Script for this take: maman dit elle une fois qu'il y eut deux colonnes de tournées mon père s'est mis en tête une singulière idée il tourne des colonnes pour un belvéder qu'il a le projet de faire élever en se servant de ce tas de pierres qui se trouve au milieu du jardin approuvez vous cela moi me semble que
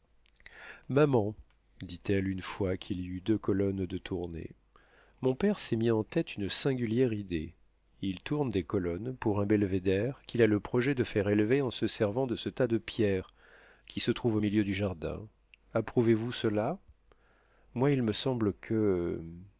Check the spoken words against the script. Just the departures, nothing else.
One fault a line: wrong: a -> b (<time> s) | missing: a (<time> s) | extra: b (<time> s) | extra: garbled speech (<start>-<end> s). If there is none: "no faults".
extra: il (17.9 s)